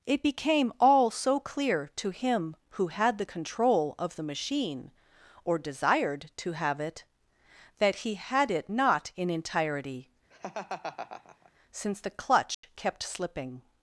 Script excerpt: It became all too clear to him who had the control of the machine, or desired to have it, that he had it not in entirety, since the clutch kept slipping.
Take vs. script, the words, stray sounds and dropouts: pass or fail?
fail